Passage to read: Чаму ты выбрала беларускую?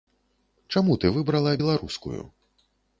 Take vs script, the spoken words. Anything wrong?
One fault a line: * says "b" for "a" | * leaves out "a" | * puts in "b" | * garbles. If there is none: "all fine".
all fine